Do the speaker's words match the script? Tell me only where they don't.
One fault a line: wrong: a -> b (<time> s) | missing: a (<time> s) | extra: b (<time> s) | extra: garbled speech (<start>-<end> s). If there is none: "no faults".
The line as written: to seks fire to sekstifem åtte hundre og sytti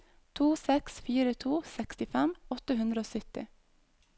no faults